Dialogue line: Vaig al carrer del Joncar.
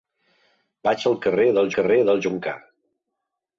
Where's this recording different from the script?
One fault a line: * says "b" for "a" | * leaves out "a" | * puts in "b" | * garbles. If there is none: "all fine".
* puts in "carrer del"